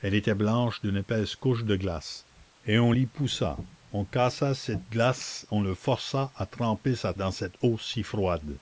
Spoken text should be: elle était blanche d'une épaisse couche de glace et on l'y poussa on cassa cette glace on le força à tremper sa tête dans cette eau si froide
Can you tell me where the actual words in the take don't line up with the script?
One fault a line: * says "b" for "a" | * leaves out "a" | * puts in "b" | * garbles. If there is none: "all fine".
* leaves out "tête"